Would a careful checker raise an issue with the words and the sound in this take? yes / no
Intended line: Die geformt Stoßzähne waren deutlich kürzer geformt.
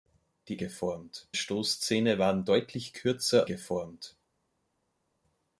no